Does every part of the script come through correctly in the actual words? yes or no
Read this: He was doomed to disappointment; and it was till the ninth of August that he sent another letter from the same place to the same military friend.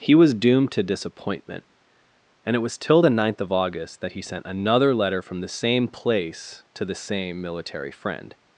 yes